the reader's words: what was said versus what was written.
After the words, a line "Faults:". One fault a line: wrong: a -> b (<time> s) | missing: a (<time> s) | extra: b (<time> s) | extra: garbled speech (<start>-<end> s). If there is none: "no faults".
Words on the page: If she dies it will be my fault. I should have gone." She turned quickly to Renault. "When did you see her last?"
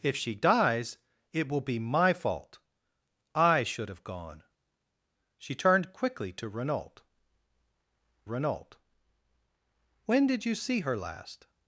If she dies it will be my fault. I should have gone." She turned quickly to Renault Renault. "When did you see her last?"
Faults:
extra: Renault (8.2 s)